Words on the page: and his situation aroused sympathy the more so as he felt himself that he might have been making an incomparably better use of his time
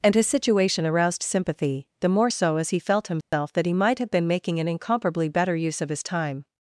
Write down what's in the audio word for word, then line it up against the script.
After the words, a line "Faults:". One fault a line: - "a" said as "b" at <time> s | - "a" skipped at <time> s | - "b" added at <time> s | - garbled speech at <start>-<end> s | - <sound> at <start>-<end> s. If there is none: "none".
and his situation aroused sympathy the more so as he felt himself that he might have been making an incomparably better use of his time
Faults:
- dropout at 3.2-3.3 s